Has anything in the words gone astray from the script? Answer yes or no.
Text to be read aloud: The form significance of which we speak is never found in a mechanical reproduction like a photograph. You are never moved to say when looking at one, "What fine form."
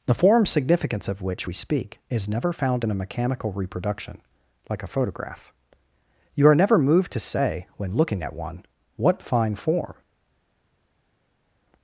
no